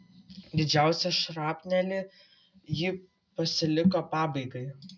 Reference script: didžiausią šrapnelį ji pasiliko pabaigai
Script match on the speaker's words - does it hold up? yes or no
yes